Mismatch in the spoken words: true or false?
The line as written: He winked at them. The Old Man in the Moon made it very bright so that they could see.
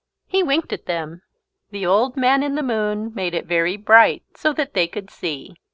false